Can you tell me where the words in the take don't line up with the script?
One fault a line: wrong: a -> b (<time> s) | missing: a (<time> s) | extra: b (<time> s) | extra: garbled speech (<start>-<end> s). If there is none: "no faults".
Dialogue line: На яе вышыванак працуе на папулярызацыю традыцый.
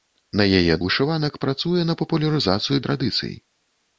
no faults